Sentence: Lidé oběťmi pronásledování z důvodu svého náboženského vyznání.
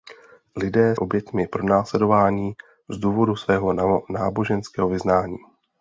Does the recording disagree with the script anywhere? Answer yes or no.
no